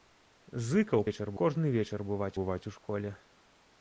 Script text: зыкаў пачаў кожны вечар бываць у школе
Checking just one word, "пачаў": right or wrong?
wrong